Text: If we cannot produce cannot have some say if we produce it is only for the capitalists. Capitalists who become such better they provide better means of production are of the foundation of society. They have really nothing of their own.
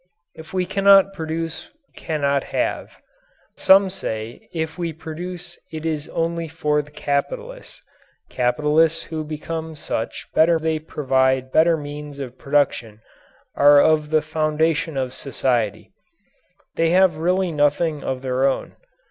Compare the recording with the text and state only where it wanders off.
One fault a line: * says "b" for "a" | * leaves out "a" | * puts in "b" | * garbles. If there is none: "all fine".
all fine